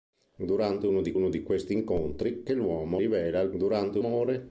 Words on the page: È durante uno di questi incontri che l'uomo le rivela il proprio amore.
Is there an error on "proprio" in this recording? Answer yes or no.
yes